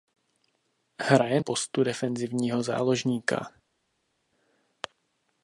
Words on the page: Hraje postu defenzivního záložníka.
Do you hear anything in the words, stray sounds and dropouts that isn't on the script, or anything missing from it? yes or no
no